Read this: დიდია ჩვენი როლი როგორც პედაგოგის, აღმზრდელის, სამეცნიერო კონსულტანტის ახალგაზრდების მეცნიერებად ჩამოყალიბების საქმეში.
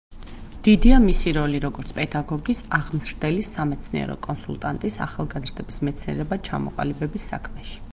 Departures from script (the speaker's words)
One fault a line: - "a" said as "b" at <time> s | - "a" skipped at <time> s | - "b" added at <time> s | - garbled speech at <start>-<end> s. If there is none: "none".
- "ჩვენი" said as "მისი" at 1.0 s